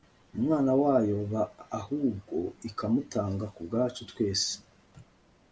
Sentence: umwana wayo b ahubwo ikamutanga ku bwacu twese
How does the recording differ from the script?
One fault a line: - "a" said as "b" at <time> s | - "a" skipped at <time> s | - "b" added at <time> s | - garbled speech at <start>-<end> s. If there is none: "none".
none